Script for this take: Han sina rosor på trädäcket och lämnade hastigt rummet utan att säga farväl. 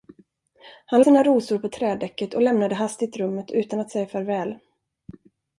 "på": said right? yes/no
yes